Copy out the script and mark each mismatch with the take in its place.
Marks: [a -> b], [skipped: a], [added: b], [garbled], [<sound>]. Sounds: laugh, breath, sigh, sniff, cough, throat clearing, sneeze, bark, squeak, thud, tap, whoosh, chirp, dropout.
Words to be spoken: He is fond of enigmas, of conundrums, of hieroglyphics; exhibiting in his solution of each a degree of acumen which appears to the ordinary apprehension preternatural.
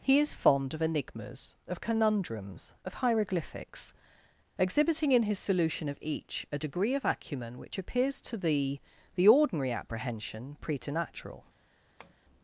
He is fond of enigmas, of conundrums, of hieroglyphics; exhibiting in his solution of each a degree of acumen which appears to the [added: the] ordinary apprehension preternatural. [tap]